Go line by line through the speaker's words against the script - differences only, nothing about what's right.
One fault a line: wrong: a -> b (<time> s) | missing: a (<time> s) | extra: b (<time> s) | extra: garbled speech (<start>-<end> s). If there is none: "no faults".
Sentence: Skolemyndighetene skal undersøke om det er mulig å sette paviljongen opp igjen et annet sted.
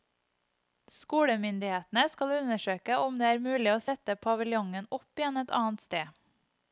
no faults